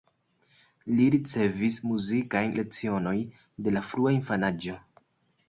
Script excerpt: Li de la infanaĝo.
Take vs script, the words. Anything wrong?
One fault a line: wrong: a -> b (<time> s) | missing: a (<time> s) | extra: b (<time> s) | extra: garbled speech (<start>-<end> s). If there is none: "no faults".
extra: ricevis muzikajn lecionojn (1.1 s)
extra: frua (3.9 s)